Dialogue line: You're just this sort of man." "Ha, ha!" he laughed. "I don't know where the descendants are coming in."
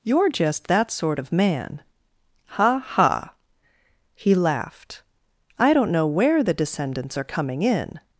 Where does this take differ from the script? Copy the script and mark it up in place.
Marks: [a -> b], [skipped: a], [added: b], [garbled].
You're just [this -> that] sort of man." "Ha, ha!" he laughed. "I don't know where the descendants are coming in."